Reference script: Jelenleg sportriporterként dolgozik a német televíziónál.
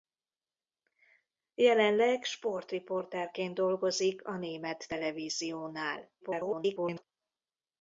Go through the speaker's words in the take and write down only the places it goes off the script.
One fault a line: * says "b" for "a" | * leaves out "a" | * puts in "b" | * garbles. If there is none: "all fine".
* garbles